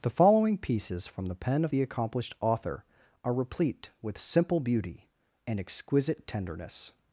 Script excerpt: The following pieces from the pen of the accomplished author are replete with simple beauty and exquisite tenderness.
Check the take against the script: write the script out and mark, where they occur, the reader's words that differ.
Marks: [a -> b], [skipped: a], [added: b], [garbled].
The following pieces from the pen of the accomplished author are replete with simple beauty and exquisite tenderness.